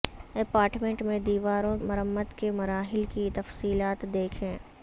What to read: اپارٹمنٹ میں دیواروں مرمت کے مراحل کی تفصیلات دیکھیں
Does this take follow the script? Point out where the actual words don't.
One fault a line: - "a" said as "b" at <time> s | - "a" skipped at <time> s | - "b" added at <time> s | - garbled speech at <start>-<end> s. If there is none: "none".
none